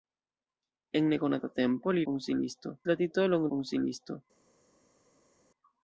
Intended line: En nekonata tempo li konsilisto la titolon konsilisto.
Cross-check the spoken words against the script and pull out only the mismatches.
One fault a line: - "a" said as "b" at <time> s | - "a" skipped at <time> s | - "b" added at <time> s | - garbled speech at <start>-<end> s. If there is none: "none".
none